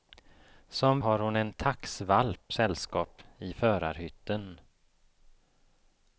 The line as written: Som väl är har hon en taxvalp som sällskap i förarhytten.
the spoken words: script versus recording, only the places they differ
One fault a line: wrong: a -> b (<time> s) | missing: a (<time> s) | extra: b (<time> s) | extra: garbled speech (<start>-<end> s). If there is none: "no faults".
missing: väl är (1.0 s)
missing: som (2.5 s)